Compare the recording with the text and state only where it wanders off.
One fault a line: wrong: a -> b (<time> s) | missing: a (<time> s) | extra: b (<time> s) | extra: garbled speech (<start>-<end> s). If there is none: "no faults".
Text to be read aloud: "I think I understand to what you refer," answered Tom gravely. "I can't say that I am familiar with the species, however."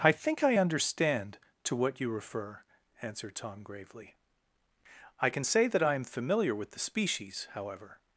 wrong: can't -> can (5.3 s)